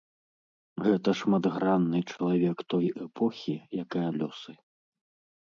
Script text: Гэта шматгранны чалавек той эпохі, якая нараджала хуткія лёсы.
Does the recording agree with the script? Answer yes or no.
no